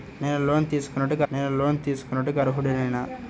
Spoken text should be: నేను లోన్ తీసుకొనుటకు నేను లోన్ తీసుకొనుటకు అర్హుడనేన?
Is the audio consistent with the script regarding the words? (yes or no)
yes